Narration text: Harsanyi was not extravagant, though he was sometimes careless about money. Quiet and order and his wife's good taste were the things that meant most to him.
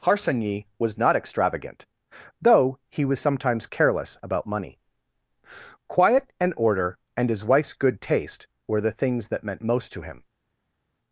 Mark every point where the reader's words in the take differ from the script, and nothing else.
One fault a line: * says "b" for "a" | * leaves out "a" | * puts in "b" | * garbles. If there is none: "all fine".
all fine